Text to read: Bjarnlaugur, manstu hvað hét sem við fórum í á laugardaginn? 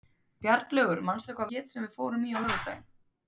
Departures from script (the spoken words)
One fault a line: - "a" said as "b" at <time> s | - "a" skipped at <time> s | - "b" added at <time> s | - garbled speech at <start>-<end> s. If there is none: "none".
none